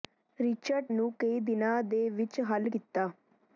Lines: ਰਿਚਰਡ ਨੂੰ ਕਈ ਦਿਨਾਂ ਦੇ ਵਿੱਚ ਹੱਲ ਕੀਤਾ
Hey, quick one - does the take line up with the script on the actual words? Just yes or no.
yes